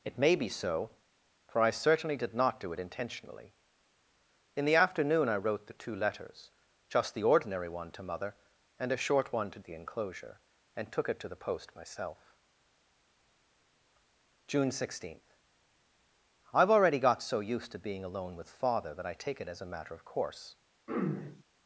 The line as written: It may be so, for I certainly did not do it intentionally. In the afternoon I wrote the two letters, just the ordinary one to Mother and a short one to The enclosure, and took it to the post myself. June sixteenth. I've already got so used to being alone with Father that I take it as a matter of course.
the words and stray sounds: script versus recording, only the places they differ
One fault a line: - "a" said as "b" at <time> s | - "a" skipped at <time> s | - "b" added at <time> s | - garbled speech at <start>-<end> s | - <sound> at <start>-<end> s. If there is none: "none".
- throat clearing at 20.9-21.4 s